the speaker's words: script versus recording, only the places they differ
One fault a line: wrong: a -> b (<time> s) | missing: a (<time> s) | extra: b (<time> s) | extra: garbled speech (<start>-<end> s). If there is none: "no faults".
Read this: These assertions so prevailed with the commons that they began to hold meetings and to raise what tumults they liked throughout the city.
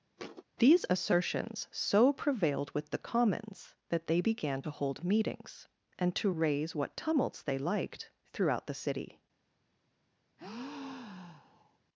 no faults